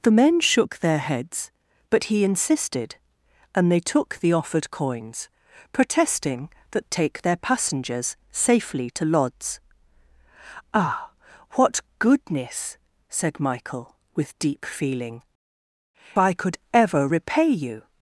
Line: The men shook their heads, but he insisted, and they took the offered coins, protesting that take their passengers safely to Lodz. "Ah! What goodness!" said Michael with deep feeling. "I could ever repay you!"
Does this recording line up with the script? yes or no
yes